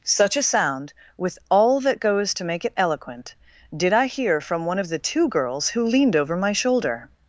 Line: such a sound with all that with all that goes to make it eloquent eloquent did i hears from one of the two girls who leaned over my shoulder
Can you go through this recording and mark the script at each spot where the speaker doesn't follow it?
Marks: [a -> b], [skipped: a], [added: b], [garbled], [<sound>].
such a sound with all that [skipped: with all that] goes to make it eloquent [skipped: eloquent] did i [hears -> hear] from one of the two girls who leaned over my shoulder